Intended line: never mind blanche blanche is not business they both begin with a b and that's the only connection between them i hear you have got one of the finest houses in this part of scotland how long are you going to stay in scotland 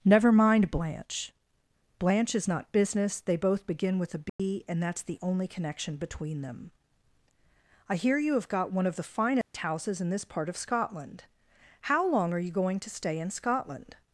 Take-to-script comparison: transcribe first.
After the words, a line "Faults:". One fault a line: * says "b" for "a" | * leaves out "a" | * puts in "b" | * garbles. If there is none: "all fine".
never mind blanche blanche is not business they both begin with a b and that's the only connection between them i hear you have got one of the finest houses in this part of scotland how long are you going to stay in scotland
Faults:
all fine